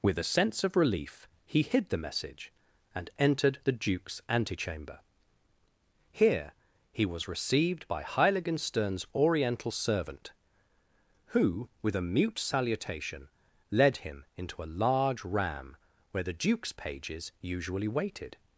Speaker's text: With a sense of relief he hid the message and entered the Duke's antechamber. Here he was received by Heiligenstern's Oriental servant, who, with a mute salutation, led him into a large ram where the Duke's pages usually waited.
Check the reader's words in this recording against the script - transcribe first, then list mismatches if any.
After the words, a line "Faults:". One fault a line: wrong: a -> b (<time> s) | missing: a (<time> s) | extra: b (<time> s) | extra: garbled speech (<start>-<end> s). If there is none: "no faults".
With a sense of relief he hid the message and entered the Duke's antechamber. Here he was received by Heiligenstern's Oriental servant, who, with a mute salutation, led him into a large ram where the Duke's pages usually waited.
Faults:
no faults